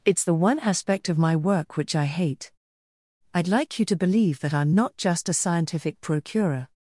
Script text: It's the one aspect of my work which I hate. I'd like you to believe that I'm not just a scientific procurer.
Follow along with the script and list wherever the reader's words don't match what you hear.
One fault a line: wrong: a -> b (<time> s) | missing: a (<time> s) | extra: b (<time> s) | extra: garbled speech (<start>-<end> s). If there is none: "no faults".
no faults